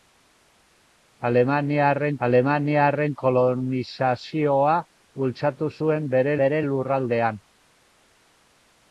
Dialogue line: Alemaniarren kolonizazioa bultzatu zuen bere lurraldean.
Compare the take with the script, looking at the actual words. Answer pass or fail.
fail